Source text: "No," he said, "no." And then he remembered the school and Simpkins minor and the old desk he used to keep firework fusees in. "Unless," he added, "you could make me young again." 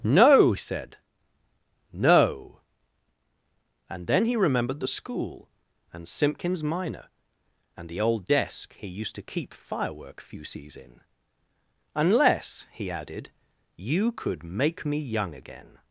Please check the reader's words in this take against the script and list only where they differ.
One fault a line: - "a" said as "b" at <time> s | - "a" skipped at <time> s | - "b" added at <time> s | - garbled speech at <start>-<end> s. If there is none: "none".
- "he" skipped at 0.5 s